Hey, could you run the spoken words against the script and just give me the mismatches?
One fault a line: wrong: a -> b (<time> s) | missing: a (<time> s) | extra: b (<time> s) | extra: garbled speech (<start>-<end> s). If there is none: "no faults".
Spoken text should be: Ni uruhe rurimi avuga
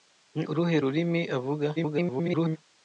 extra: garbled speech (1.8-2.6 s)